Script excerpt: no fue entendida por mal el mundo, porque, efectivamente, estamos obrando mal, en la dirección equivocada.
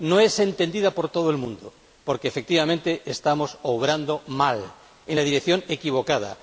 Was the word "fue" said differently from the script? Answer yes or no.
yes